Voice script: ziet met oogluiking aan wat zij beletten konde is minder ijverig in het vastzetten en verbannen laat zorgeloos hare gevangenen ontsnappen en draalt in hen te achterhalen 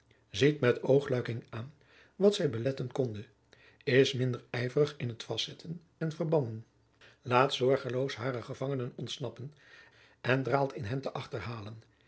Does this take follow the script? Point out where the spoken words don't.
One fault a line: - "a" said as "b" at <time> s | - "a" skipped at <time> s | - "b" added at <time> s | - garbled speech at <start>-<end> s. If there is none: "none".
none